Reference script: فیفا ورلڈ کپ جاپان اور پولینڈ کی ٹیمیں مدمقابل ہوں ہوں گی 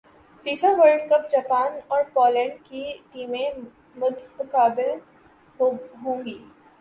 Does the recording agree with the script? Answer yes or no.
no